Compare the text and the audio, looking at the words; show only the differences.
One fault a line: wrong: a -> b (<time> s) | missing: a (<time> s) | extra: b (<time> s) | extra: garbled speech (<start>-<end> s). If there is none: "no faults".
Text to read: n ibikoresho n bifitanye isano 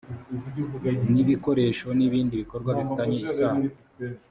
extra: ibindi bikorwa (2.1 s)